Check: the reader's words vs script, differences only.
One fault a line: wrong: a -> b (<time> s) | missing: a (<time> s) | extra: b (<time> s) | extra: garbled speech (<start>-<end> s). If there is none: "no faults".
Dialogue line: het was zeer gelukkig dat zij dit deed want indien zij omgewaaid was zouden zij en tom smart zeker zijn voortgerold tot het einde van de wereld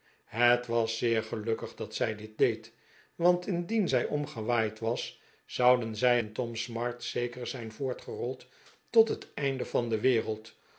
no faults